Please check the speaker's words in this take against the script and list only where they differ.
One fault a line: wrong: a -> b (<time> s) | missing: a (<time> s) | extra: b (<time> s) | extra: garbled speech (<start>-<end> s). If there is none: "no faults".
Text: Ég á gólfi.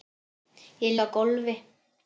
no faults